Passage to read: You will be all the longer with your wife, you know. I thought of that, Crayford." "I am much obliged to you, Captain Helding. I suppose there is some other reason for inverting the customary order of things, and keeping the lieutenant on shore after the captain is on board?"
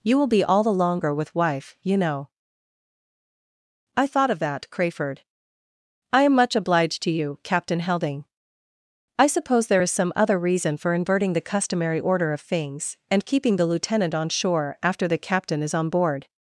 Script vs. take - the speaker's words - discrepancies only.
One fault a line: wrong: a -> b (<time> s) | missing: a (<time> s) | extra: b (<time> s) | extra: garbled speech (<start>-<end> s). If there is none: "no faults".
missing: your (1.4 s)